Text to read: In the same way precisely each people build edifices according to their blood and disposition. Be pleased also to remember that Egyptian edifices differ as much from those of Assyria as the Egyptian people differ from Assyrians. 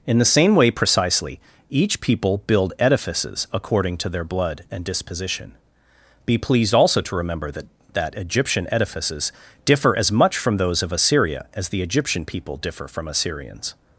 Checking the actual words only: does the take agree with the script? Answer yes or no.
no